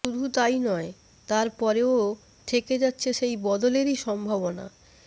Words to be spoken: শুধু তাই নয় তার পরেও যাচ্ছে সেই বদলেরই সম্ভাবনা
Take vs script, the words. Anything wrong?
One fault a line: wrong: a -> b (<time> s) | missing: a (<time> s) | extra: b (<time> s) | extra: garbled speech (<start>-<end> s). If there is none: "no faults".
extra: থেকে (2.5 s)